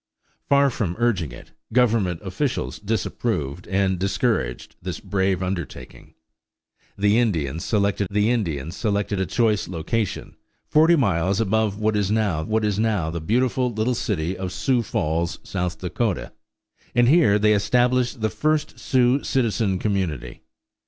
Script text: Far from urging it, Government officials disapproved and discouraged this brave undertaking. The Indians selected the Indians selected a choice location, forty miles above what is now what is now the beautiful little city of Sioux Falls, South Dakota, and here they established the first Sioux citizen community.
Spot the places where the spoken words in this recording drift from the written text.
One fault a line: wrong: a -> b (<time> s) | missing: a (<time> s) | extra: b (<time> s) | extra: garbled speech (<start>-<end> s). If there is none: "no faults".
no faults